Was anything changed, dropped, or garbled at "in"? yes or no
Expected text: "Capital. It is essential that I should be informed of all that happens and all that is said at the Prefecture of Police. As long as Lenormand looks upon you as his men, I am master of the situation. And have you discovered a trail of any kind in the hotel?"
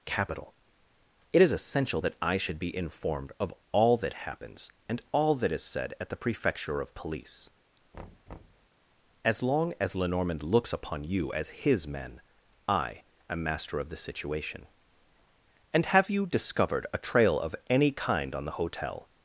yes